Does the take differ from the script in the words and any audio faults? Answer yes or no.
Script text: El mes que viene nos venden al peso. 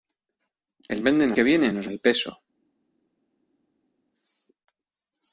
yes